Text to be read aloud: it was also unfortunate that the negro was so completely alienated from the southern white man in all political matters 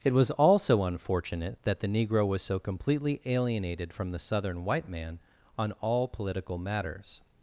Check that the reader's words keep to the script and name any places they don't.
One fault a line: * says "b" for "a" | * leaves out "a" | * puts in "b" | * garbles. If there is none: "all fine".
* says "on" for "in"